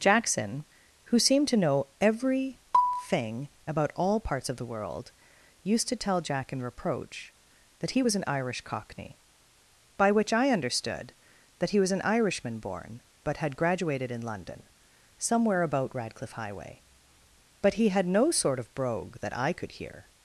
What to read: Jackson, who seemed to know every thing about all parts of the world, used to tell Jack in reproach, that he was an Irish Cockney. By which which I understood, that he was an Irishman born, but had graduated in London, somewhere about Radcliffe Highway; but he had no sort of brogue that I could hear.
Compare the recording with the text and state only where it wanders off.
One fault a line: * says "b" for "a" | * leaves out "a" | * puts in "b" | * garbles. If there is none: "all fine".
* leaves out "which"